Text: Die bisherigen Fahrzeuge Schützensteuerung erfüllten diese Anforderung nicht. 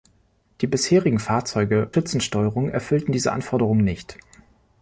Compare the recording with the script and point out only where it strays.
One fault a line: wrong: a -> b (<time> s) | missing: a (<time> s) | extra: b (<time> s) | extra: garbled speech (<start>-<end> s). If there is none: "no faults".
no faults